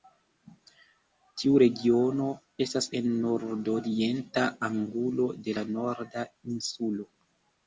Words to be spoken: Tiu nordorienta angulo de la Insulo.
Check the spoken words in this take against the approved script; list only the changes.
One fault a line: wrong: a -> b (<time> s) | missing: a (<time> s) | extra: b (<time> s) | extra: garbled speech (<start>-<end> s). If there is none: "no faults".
extra: regiono estas en (1.6 s)
extra: Norda (5.8 s)